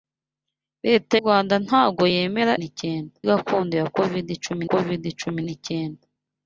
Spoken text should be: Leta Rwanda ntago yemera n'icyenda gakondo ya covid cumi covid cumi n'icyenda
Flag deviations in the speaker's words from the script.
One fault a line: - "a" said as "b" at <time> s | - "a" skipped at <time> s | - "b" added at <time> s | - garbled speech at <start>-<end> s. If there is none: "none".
none